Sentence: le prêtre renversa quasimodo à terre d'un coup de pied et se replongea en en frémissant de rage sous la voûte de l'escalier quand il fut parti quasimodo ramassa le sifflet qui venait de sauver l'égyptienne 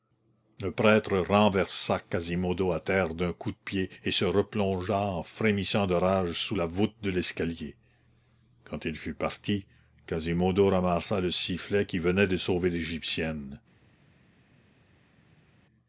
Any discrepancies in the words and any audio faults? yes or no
yes